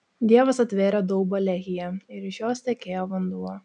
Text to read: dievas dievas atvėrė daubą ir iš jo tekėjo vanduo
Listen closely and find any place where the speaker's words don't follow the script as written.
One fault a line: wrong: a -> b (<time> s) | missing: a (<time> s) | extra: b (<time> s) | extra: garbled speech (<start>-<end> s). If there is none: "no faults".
missing: dievas (0.6 s)
extra: lehyje (1.4 s)
wrong: jo -> jos (2.5 s)